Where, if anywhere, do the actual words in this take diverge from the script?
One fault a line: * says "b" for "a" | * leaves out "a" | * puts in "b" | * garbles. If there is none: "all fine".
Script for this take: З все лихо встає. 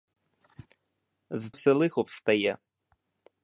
all fine